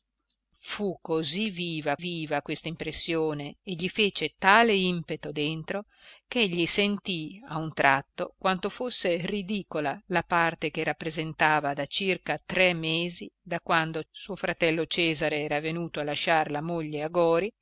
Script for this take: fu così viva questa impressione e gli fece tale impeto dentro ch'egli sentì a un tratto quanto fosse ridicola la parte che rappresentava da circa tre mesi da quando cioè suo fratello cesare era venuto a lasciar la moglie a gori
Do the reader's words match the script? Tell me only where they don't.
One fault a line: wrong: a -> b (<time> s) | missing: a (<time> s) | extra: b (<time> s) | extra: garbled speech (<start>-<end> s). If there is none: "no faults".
extra: viva (2.0 s)
missing: cioè (14.0 s)